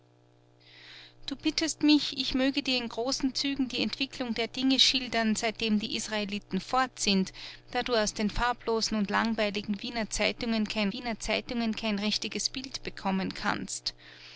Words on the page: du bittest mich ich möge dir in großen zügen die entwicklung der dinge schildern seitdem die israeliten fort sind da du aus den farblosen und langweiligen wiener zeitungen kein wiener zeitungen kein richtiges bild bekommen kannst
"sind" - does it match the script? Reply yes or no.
yes